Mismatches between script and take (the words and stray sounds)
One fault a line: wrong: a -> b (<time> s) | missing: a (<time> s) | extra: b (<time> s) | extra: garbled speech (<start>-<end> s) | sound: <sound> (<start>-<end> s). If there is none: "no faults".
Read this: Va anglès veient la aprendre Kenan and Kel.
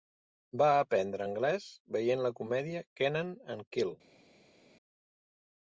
extra: aprendre (0.8 s)
wrong: aprendre -> comèdia (2.4 s)